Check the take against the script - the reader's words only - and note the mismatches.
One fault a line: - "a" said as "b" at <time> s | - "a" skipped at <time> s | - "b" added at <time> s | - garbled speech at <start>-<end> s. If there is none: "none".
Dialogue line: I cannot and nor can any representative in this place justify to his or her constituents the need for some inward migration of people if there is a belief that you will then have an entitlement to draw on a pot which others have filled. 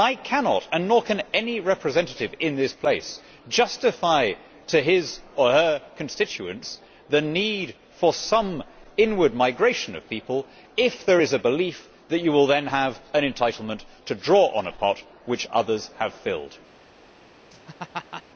none